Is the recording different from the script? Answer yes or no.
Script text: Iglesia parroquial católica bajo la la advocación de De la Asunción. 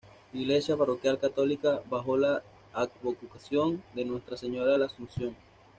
yes